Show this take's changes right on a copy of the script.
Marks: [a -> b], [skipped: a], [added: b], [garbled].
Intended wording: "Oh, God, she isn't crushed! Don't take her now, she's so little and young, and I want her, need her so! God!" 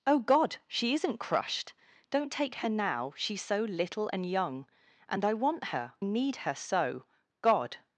"Oh, God, she isn't crushed! Don't take her now, she's so little and young, and I want her, need her so! God!"